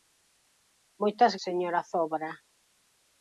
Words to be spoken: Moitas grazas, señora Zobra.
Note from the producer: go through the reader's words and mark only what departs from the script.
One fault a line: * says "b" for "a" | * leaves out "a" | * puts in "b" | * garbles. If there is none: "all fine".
* leaves out "grazas"